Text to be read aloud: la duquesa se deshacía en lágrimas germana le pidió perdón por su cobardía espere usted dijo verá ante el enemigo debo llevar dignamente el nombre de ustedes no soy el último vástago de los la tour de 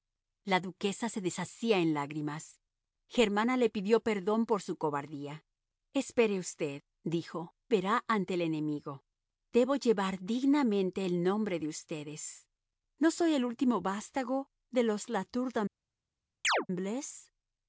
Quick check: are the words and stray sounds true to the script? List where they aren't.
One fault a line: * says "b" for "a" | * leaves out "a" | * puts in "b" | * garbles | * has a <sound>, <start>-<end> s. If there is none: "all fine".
* has a chirp, 16.4-16.7 s